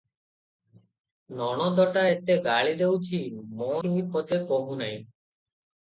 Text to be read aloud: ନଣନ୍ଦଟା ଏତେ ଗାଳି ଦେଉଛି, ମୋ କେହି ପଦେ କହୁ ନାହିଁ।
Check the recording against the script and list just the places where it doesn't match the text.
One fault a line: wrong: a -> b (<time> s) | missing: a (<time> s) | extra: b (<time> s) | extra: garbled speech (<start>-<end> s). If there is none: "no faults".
no faults